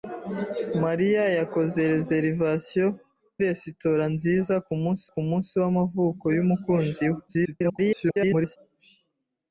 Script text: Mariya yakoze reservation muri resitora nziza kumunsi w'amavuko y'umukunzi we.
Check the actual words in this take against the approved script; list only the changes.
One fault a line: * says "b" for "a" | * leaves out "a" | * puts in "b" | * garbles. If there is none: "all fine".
* leaves out "muri"
* puts in "kumunsi"
* garbles